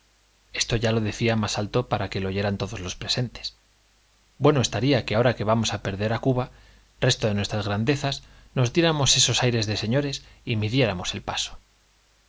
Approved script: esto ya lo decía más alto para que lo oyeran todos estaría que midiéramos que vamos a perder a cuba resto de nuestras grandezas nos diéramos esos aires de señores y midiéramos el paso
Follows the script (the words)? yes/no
no